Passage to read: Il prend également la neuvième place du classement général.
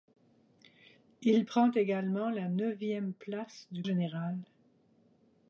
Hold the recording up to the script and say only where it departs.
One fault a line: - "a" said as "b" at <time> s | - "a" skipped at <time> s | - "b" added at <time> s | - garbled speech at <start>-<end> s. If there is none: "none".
- "classement" skipped at 3.8 s